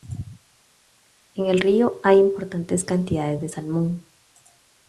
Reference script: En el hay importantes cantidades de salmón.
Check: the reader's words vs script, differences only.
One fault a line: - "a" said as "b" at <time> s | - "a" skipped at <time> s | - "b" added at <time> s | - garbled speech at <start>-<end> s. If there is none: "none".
- "río" added at 1.6 s